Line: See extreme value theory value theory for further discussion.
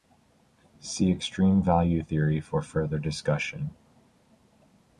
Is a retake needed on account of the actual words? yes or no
yes